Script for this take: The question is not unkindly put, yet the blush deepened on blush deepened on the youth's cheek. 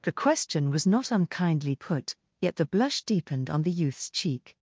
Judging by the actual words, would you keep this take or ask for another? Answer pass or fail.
fail